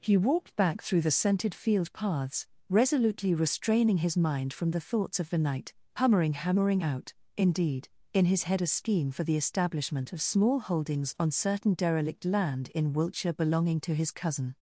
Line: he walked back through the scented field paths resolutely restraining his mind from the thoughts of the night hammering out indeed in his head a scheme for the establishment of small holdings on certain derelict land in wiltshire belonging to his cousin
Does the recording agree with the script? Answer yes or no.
no